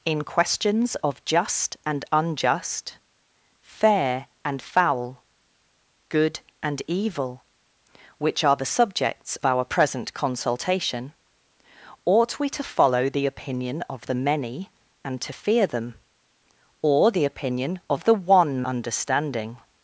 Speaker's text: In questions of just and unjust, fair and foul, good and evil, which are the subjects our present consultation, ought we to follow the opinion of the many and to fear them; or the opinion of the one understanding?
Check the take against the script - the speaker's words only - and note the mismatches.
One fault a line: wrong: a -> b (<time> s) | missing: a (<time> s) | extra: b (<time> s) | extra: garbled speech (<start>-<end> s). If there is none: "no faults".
no faults